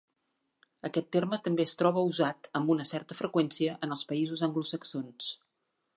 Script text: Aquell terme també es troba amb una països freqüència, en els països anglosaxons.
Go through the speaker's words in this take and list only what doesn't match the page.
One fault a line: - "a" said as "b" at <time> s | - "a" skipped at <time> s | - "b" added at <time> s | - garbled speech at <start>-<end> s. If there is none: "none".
- "Aquell" said as "Aquest" at 0.9 s
- "usat" added at 2.1 s
- "països" said as "certa" at 2.9 s